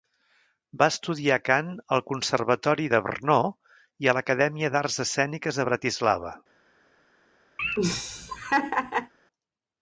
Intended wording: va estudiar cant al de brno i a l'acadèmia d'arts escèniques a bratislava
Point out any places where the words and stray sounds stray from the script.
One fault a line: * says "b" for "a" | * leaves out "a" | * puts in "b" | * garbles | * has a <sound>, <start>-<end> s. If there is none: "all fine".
* puts in "conservatori"
* has a laugh, 7.6-9.1 s